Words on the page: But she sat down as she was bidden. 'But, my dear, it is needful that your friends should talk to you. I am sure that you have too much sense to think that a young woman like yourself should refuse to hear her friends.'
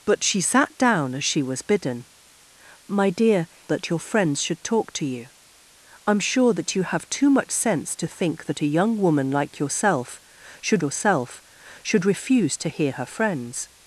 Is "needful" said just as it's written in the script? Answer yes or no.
no